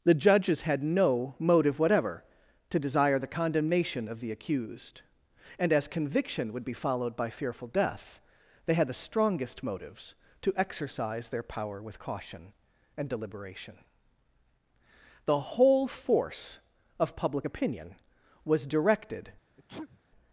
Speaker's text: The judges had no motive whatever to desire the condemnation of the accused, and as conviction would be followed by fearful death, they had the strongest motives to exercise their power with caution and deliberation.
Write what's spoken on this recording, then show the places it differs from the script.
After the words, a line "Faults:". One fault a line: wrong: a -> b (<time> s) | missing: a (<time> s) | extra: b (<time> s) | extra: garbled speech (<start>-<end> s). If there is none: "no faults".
The judges had no motive whatever to desire the condemnation of the accused, and as conviction would be followed by fearful death, they had the strongest motives to exercise their power with caution and deliberation. The whole force of public opinion was directed
Faults:
extra: The whole force of public opinion was directed (15.2 s)